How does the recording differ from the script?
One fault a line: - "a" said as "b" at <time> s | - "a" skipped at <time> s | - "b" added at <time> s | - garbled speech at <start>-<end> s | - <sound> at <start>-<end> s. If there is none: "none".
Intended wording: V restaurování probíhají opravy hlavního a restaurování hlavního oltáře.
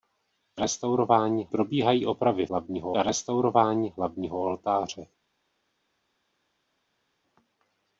none